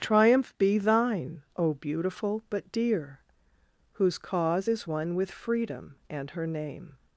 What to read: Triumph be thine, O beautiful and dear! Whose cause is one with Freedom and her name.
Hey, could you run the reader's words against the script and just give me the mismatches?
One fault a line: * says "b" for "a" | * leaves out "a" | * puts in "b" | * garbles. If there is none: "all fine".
* says "but" for "and"